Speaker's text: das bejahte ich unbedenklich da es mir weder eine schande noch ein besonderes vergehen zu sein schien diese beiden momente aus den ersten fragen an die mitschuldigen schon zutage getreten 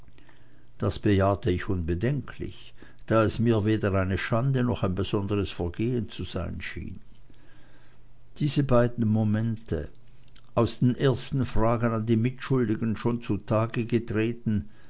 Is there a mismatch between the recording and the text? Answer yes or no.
no